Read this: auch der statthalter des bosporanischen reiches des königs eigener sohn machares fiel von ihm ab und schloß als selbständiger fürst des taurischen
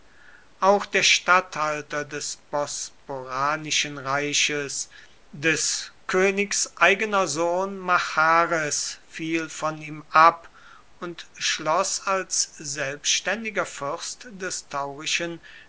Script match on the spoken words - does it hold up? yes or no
yes